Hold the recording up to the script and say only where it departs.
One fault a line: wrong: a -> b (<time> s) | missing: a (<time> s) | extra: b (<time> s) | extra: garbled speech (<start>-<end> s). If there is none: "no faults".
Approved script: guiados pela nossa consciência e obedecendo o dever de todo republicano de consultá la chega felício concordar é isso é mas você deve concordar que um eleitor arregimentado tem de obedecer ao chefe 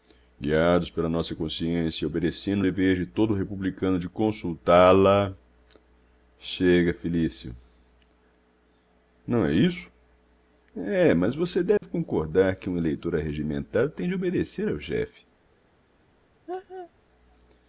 wrong: concordar -> não (9.3 s)